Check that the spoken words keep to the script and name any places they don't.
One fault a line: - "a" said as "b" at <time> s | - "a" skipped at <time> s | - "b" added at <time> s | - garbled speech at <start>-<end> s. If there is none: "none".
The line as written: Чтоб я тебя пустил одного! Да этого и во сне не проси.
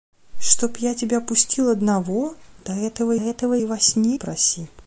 - "этого" added at 3.2 s
- "не" skipped at 4.2 s